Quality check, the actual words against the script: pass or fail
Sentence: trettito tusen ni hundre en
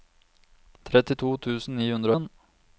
pass